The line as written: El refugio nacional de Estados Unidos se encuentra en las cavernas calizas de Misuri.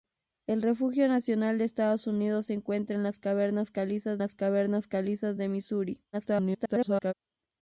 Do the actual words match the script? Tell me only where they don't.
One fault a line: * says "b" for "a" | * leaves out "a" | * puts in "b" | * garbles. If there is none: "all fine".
* puts in "las cavernas calizas"
* garbles